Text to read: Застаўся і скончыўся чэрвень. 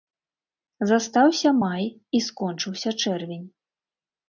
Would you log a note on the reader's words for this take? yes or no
yes